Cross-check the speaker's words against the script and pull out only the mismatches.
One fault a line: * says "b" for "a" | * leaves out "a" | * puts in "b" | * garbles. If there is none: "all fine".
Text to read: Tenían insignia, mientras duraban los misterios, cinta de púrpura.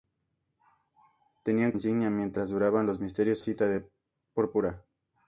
all fine